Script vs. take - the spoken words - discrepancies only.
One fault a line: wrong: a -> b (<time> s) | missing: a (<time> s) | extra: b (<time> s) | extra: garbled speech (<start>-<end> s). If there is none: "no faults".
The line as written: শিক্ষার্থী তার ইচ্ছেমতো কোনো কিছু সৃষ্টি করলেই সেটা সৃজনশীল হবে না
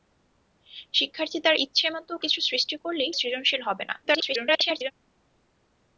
missing: কোনো (2.1 s)
missing: সেটা (3.1 s)
extra: garbled speech (4.0-4.9 s)